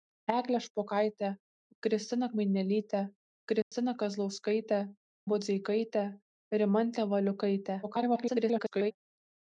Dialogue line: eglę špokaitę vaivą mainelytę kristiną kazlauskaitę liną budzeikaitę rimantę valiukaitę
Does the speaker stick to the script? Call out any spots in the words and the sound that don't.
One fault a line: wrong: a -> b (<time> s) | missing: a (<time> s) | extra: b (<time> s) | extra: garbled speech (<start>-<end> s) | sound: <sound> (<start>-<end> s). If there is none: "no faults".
wrong: vaivą -> kristiną (1.8 s)
sound: dropout (3.6-3.7 s)
missing: liną (4.8 s)
extra: garbled speech (7.8-8.9 s)